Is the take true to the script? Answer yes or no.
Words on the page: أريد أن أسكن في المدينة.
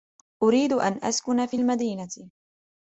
yes